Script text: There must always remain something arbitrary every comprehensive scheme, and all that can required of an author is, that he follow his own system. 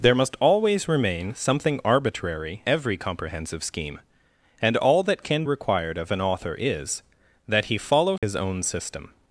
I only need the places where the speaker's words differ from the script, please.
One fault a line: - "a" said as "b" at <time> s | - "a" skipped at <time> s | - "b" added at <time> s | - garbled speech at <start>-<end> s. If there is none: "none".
none